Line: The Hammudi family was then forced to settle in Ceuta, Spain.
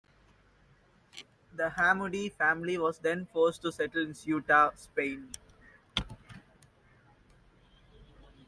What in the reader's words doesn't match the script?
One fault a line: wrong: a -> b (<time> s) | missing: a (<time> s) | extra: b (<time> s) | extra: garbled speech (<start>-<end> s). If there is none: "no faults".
no faults